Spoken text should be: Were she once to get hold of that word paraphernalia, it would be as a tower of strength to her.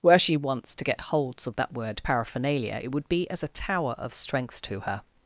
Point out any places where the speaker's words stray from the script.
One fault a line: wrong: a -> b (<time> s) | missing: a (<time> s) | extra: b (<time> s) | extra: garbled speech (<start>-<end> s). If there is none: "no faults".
wrong: hold -> holds (1.0 s)